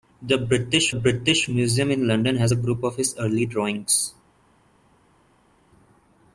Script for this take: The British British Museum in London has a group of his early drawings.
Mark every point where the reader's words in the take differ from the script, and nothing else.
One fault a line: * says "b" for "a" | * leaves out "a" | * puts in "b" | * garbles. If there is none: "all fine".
all fine